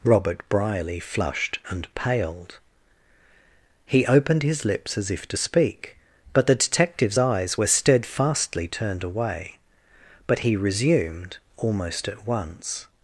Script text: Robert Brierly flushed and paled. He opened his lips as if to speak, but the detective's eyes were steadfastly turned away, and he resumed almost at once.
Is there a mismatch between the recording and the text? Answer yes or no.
yes